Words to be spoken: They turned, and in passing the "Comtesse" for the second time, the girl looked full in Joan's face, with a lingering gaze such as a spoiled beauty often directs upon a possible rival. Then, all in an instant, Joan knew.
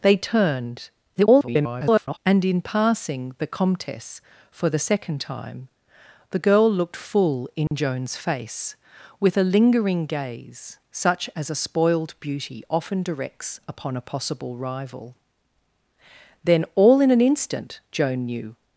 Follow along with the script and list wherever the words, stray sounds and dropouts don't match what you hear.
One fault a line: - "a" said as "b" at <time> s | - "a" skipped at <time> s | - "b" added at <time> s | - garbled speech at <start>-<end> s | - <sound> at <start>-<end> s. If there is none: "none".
- garbled speech at 1.2-2.2 s
- dropout at 7.7-7.7 s